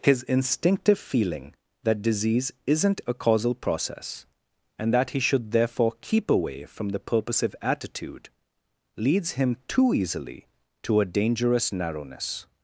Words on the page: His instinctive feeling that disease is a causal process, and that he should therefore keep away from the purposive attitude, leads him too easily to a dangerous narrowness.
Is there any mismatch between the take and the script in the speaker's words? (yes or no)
yes